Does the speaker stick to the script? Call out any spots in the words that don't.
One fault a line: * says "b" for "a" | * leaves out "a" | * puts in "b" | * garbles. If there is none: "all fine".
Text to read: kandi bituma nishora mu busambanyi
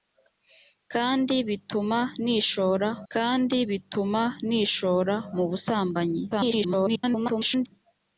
* puts in "kandi bituma nishora"
* garbles